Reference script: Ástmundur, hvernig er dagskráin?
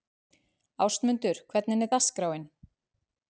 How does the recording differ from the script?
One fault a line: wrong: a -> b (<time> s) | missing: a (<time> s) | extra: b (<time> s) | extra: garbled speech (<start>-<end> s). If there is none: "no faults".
no faults